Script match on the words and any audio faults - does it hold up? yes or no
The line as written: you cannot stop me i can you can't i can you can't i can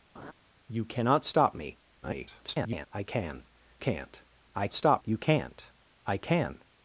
no